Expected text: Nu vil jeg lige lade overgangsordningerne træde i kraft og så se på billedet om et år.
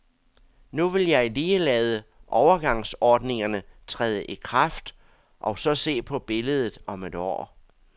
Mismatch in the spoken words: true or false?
false